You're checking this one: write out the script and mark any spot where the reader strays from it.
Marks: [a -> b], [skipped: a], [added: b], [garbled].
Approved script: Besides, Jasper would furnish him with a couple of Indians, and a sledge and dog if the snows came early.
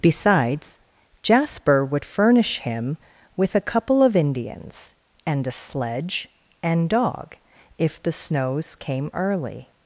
Besides, Jasper would furnish him with a couple of Indians, and a sledge and dog if the snows came early.